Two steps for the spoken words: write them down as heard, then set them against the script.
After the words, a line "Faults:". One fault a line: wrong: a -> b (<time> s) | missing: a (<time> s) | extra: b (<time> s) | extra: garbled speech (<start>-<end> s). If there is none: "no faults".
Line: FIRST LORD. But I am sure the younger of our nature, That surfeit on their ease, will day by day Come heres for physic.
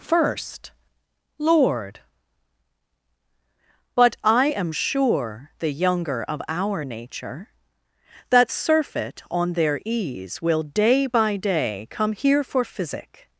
FIRST LORD. But I am sure the younger of our nature, That surfeit on their ease, will day by day Come here for physic.
Faults:
wrong: heres -> here (12.1 s)